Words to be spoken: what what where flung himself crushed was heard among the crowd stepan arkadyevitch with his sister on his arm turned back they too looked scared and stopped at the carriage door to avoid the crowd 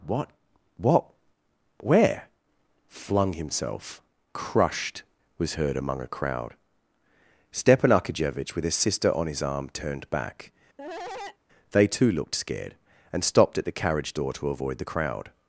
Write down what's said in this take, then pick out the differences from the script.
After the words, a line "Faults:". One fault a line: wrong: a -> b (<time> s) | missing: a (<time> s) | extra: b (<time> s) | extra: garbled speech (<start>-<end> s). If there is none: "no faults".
what what where flung himself crushed was heard among a crowd stepan arkadyevitch with his sister on his arm turned back they too looked scared and stopped at the carriage door to avoid the crowd
Faults:
wrong: the -> a (6.0 s)